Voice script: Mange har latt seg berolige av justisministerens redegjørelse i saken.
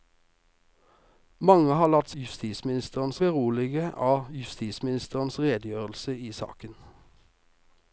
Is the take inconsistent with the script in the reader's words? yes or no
yes